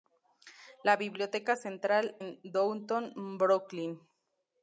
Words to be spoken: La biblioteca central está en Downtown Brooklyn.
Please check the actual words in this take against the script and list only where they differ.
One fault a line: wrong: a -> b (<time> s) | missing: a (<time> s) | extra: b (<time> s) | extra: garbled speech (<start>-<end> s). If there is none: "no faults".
missing: está (2.2 s)